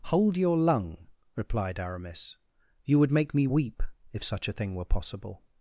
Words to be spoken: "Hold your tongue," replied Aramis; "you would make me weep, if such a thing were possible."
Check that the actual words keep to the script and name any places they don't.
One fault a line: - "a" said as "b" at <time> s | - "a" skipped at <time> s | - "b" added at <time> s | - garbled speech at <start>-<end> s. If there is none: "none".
- "tongue" said as "lung" at 0.6 s